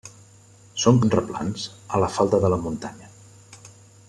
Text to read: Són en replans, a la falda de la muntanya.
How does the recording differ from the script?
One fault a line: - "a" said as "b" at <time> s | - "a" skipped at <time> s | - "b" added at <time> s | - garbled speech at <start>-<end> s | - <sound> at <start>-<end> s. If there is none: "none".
none